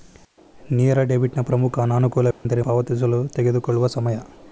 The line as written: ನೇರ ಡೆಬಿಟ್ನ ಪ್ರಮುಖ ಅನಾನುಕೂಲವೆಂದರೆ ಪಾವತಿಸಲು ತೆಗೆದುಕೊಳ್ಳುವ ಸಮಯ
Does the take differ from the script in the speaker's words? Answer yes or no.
no